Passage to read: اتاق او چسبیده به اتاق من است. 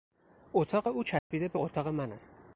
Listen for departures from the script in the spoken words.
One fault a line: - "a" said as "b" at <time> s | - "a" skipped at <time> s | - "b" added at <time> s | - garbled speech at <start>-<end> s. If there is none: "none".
none